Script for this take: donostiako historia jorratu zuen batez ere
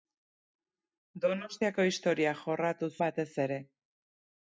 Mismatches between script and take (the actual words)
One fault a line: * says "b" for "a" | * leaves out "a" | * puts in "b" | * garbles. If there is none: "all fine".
* leaves out "zuen"